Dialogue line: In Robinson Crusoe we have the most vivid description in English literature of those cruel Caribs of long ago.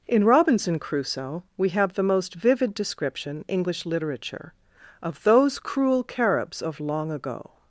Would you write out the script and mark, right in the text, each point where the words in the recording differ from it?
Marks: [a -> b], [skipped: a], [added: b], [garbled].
In Robinson Crusoe we have the most vivid description [skipped: in] English literature of those cruel Caribs of long ago.